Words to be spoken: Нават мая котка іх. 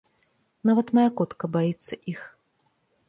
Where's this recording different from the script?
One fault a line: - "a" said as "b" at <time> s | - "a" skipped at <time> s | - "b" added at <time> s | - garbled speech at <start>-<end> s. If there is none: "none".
- "баіцца" added at 1.6 s